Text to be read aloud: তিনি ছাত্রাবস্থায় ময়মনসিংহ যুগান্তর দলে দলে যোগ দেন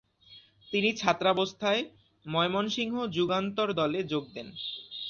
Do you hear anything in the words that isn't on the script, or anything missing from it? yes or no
yes